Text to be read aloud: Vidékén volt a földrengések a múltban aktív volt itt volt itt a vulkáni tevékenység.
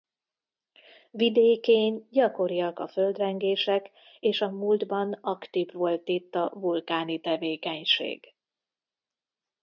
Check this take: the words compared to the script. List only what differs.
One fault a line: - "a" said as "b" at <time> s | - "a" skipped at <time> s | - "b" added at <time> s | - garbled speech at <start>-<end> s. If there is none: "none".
- "volt" said as "gyakoriak" at 2.1 s
- "és" added at 4.2 s
- "volt itt" skipped at 6.3 s